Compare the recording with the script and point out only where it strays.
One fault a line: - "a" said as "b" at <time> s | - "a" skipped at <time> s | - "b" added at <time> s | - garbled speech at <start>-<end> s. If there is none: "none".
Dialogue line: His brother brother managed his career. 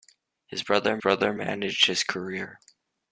none